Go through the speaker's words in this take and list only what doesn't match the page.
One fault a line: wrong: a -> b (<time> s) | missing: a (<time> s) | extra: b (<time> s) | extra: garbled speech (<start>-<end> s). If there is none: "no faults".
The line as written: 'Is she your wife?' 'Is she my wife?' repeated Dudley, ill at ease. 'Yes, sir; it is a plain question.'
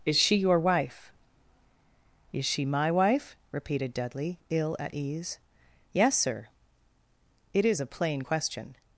no faults